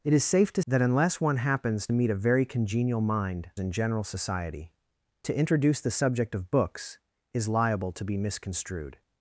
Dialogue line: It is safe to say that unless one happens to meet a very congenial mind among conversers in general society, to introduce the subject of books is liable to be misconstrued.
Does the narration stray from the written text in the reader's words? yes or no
yes